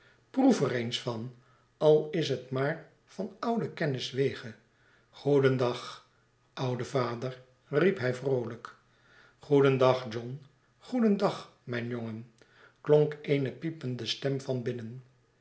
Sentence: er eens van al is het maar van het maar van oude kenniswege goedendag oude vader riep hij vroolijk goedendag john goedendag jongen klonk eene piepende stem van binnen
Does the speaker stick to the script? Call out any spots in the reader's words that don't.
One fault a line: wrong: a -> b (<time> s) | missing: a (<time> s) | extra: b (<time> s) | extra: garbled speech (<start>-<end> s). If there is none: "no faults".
missing: het maar van (3.4 s)
extra: mijn (11.6 s)